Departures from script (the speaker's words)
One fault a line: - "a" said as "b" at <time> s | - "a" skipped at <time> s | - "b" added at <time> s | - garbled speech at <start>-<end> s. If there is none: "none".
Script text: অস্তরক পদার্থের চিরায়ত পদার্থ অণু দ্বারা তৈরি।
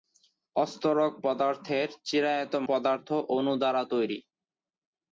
none